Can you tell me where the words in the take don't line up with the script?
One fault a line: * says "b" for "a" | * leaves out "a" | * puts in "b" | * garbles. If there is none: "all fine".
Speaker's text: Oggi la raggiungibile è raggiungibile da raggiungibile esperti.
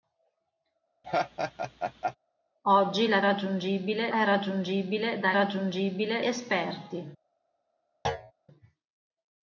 all fine